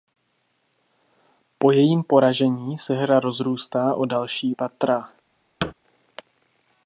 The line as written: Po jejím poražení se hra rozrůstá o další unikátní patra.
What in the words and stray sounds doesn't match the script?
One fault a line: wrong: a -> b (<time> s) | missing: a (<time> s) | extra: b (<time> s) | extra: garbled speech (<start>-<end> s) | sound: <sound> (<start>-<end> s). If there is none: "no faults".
missing: unikátní (4.5 s)
sound: thud (5.6-5.7 s)